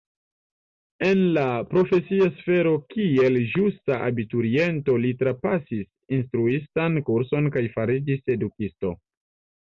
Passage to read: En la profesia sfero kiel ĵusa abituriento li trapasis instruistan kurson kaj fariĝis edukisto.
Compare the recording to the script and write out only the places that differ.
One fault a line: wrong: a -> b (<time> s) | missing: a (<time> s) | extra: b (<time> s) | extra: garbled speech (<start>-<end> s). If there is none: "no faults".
no faults